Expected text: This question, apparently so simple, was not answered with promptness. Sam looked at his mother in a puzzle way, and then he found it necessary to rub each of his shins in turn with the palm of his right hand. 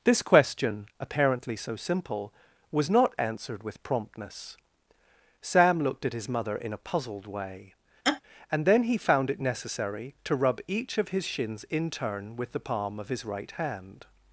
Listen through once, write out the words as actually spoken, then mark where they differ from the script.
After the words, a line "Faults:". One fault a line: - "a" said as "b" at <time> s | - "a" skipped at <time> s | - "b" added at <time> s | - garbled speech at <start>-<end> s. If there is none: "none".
This question, apparently so simple, was not answered with promptness. Sam looked at his mother in a puzzled way, and then he found it necessary to rub each of his shins in turn with the palm of his right hand.
Faults:
- "puzzle" said as "puzzled" at 6.8 s